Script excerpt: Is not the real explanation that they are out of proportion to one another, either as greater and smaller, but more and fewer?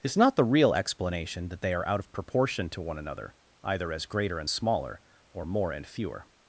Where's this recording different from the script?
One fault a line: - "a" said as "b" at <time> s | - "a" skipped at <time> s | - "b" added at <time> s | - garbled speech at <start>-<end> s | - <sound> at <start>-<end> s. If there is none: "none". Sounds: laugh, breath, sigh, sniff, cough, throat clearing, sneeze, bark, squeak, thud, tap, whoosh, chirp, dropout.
- "but" said as "or" at 5.3 s